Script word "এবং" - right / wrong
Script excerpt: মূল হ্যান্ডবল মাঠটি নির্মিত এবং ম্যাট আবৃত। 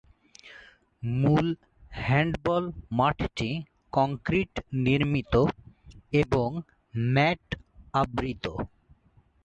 right